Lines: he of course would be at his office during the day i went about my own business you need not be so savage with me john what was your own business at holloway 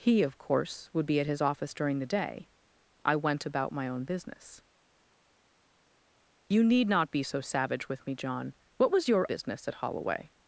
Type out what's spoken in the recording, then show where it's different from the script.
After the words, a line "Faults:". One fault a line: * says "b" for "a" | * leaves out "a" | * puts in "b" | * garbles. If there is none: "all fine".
he of course would be at his office during the day i went about my own business you need not be so savage with me john what was your business at holloway
Faults:
* leaves out "own"